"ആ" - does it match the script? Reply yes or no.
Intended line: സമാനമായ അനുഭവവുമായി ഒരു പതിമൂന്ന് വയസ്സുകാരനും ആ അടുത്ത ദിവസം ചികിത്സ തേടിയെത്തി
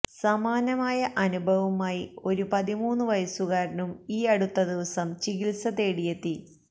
no